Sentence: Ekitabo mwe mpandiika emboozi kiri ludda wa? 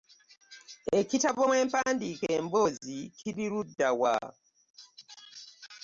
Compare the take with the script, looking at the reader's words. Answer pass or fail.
pass